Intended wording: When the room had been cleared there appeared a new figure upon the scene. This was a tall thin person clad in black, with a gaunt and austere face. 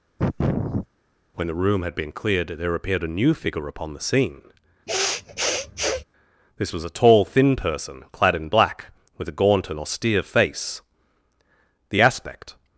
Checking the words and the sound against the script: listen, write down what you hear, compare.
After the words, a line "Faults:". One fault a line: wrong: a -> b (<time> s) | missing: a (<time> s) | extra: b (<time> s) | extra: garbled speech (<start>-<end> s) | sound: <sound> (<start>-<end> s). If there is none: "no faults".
When the room had been cleared there appeared a new figure upon the scene. This was a tall thin person clad in black, with a gaunt and austere face. The aspect
Faults:
sound: sniff (0.2-0.9 s)
sound: sniff (4.9-6.0 s)
extra: The aspect (11.9 s)